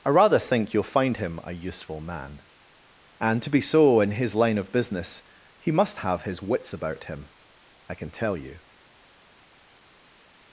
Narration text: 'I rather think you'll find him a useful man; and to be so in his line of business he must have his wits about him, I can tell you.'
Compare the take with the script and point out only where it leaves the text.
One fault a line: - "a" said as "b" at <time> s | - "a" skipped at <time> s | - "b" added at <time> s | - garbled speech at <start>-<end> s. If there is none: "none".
none